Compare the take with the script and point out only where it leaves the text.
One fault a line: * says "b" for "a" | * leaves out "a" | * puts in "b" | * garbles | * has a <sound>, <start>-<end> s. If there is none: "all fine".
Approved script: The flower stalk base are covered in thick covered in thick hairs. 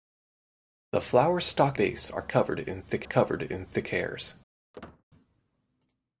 * has a squeak, 4.7-5.0 s